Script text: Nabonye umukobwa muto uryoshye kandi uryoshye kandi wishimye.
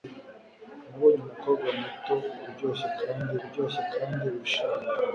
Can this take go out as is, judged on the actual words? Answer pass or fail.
pass